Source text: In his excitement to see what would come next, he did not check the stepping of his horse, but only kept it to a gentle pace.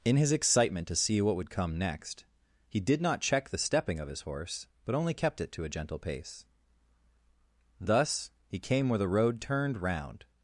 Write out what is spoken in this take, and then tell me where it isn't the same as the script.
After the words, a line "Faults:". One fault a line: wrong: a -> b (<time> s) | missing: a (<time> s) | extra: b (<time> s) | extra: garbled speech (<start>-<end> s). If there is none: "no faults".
In his excitement to see what would come next, he did not check the stepping of his horse, but only kept it to a gentle pace. Thus he came where the road turned round
Faults:
extra: Thus he came where the road turned round (7.8 s)